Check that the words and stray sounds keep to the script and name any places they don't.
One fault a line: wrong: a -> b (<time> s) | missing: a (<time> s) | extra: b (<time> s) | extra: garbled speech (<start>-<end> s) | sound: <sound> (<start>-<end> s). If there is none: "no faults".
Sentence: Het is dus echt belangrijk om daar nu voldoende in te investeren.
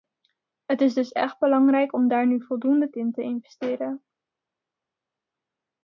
no faults